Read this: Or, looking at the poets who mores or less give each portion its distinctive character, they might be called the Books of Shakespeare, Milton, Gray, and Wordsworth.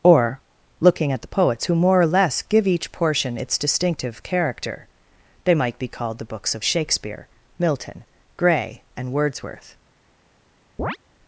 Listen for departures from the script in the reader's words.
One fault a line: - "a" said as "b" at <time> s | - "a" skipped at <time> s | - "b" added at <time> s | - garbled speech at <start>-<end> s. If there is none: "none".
- "mores" said as "more" at 1.8 s